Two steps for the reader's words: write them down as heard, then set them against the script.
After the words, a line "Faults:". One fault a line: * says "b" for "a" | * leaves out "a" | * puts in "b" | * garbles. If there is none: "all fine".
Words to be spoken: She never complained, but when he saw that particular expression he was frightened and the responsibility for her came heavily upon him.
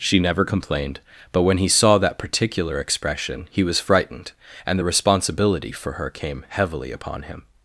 She never complained, but when he saw that particular expression he was frightened and the responsibility for her came heavily upon him.
Faults:
all fine